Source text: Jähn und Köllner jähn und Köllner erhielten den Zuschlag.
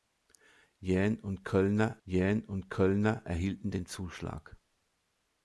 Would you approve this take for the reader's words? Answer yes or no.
yes